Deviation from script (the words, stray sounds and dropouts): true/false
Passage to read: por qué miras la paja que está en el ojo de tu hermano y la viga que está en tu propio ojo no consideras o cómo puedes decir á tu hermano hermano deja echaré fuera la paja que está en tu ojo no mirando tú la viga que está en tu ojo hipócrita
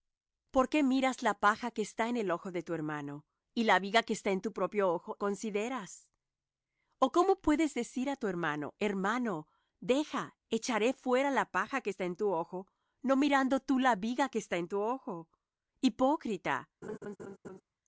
true